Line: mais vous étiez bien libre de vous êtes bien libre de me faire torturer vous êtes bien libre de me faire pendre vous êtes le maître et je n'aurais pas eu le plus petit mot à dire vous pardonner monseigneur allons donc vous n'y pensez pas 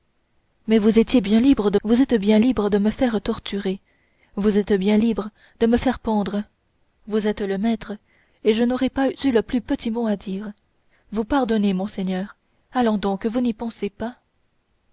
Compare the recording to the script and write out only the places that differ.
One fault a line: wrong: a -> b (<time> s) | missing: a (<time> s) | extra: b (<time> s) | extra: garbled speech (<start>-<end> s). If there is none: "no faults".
no faults